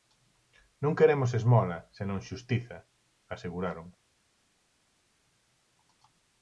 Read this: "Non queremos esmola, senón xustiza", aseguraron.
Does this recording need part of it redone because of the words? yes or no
no